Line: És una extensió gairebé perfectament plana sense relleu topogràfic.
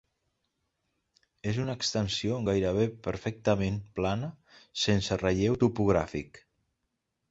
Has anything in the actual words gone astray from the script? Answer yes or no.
no